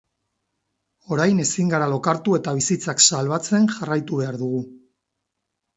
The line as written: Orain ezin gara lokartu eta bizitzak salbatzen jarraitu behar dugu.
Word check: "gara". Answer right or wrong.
right